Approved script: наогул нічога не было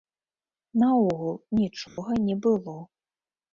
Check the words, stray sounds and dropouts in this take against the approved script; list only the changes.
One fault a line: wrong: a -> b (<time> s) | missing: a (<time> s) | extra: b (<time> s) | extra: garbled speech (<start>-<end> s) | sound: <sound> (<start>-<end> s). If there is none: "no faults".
sound: dropout (1.9-2.0 s)